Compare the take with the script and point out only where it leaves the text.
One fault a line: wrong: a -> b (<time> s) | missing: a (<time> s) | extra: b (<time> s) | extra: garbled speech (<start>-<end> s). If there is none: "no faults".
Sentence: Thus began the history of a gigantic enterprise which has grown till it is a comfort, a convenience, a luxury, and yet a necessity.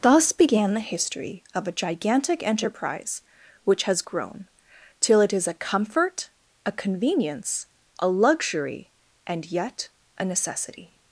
no faults